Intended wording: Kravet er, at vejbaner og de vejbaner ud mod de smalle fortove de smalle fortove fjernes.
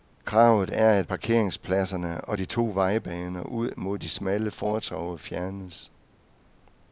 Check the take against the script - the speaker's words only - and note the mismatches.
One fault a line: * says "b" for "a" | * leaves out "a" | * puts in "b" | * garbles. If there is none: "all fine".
* says "parkeringspladserne" for "vejbaner"
* puts in "to"
* leaves out "de smalle fortove"